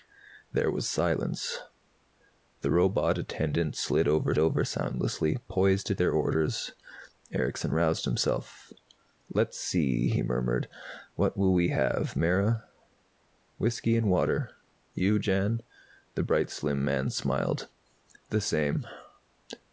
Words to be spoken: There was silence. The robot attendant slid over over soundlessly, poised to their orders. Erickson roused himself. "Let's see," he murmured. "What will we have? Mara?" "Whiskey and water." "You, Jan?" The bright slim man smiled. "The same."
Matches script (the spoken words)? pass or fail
pass